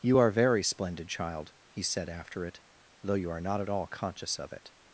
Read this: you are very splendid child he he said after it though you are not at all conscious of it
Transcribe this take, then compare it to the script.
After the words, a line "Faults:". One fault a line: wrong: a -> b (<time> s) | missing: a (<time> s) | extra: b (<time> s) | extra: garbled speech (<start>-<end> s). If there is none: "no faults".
you are very splendid child he said after it though you are not at all conscious of it
Faults:
missing: he (1.8 s)